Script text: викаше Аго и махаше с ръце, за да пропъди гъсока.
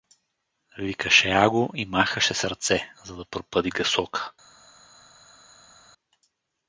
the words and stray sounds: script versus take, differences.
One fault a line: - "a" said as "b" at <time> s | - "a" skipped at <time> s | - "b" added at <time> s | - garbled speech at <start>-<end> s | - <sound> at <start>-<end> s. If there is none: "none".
none